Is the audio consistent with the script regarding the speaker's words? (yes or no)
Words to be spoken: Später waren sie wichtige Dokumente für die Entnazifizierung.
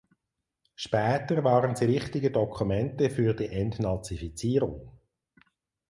yes